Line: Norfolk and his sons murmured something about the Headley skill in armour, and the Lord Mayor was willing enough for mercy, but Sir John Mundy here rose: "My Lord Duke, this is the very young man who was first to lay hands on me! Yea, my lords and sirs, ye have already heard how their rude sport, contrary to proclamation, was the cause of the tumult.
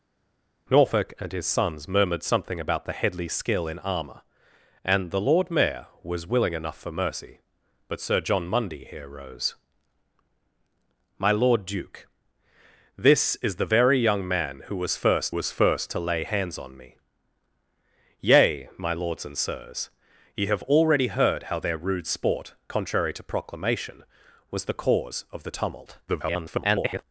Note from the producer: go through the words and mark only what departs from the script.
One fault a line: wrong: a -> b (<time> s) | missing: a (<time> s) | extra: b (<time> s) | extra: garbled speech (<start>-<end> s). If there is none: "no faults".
extra: was first (15.3 s)
extra: garbled speech (26.1-27.0 s)